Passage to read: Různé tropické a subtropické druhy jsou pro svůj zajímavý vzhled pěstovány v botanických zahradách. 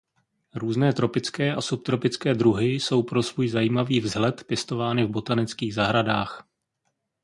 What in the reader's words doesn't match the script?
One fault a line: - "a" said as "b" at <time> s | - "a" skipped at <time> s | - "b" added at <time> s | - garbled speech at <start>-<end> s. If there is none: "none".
none